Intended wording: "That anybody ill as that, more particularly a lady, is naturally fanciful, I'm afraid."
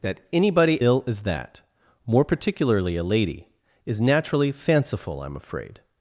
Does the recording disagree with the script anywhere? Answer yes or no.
no